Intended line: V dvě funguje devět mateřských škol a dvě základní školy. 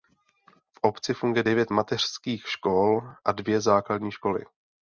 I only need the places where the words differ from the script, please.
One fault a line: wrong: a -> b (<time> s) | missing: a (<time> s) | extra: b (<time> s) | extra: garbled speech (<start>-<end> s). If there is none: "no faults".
wrong: dvě -> obci (0.8 s)